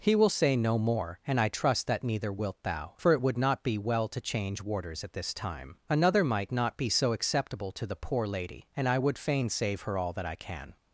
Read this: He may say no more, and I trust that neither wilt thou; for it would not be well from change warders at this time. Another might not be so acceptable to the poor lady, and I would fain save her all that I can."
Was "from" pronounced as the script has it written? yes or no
no